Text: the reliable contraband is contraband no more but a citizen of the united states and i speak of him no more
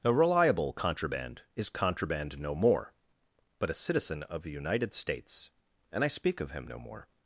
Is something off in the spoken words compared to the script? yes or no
yes